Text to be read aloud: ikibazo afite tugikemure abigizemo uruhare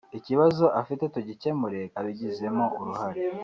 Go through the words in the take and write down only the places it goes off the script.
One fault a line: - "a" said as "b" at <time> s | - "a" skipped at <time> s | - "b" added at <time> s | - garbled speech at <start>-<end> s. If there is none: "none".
none